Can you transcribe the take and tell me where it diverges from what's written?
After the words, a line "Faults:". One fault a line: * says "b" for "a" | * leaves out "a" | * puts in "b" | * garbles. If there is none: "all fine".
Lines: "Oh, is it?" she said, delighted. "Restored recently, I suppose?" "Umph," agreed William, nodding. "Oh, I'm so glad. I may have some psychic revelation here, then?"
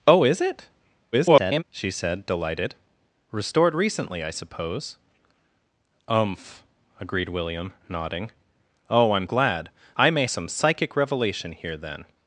"Oh, is it?" [garbled] she said, delighted. "Restored recently, I suppose?" "Umph," agreed William, nodding. "Oh, I'm glad. I may some psychic revelation here, then?"
Faults:
* garbles
* leaves out "so"
* leaves out "have"